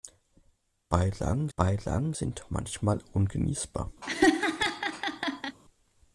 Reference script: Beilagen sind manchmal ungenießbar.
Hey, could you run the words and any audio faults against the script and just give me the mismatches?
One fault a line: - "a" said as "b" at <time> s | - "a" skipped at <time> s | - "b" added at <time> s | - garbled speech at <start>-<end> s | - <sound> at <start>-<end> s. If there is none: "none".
- "beilagen" added at 1.6 s
- laugh at 4.0-5.6 s